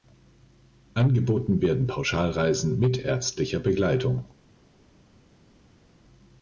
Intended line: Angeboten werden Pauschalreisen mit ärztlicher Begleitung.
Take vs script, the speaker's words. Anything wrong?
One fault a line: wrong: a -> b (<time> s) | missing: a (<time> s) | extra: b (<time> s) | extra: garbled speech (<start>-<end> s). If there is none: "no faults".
no faults